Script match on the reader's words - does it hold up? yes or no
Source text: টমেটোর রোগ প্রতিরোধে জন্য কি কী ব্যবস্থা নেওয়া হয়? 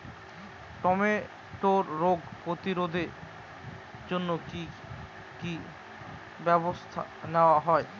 yes